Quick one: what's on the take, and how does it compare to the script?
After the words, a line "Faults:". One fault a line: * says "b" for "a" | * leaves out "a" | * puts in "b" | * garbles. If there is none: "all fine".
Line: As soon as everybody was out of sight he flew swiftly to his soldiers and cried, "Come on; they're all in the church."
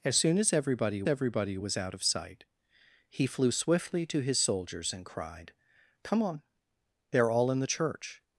As soon as everybody everybody was out of sight he flew swiftly to his soldiers and cried, "Come on; they're all in the church."
Faults:
* puts in "everybody"